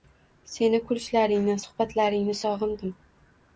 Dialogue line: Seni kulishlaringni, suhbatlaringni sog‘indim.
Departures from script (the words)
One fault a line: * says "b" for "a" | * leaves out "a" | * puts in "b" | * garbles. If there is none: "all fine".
all fine